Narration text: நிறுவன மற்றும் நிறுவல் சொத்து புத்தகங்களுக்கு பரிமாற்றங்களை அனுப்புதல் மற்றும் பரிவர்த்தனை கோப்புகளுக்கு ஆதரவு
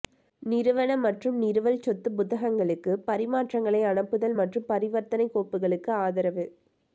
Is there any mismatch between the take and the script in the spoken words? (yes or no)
no